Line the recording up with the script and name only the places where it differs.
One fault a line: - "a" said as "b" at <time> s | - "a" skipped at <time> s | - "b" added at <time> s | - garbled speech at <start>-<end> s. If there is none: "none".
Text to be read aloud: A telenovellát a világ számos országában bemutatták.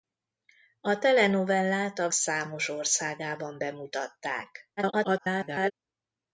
- "világ" skipped at 2.1 s
- garbled speech at 4.8-5.7 s